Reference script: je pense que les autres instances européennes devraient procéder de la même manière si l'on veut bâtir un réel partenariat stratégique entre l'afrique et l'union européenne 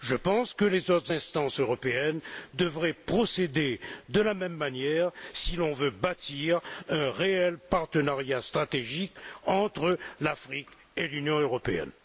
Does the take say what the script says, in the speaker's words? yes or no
yes